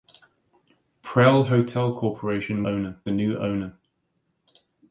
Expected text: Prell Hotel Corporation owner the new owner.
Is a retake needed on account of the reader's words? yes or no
no